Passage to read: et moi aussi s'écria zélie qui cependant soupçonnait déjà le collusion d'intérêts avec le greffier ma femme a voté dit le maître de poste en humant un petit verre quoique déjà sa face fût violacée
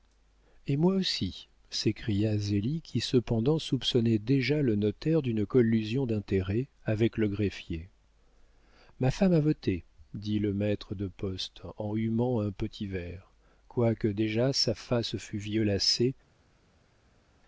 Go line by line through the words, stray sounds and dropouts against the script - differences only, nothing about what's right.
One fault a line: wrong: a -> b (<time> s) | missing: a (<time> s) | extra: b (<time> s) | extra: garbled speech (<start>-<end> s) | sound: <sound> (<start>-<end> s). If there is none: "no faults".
extra: notaire d'une (4.8 s)